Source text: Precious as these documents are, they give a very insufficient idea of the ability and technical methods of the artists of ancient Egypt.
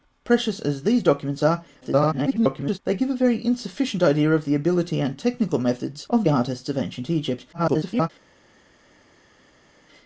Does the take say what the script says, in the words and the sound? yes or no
no